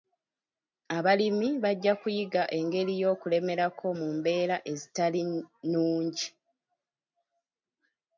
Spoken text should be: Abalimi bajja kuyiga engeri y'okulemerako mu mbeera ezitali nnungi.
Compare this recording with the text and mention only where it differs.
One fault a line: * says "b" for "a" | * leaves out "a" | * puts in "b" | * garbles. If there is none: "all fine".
all fine